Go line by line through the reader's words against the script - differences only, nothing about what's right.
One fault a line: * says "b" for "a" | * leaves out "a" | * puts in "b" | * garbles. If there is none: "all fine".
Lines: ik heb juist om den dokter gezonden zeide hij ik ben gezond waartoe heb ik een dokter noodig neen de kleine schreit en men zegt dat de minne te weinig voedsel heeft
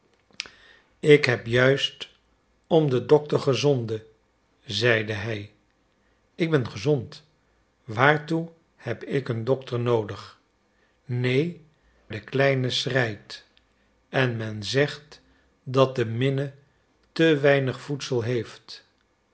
all fine